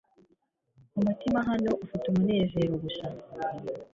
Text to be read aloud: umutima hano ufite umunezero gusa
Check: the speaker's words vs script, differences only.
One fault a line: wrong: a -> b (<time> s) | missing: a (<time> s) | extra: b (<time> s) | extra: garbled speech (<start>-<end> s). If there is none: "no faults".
no faults